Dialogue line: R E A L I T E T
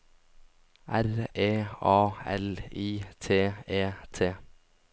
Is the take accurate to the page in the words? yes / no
yes